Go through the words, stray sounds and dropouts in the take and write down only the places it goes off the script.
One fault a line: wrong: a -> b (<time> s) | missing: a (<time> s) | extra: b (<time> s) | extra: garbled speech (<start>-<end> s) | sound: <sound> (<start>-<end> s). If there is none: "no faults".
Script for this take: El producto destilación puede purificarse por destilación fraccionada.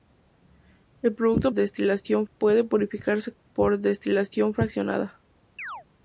sound: chirp (5.6-5.9 s)